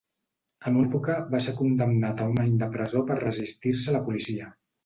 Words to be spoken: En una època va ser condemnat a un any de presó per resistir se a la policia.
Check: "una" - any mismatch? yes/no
yes